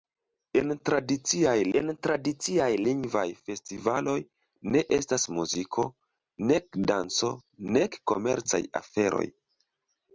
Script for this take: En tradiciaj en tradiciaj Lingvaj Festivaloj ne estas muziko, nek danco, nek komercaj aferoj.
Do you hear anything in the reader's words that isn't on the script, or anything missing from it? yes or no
no